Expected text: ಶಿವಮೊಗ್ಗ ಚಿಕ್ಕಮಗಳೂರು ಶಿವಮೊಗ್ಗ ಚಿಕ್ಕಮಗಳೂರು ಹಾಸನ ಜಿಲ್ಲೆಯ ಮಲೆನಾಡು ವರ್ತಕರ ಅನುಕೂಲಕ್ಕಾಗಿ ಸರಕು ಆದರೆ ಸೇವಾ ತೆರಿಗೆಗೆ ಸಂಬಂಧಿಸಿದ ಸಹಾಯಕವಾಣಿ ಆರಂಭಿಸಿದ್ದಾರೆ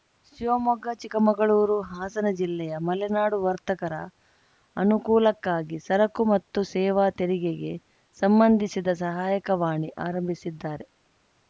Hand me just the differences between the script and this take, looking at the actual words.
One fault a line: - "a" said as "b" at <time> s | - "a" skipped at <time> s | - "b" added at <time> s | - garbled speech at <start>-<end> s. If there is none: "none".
- "ಶಿವಮೊಗ್ಗ ಚಿಕ್ಕಮಗಳೂರು" skipped at 1.8 s
- "ಆದರೆ" said as "ಮತ್ತು" at 6.3 s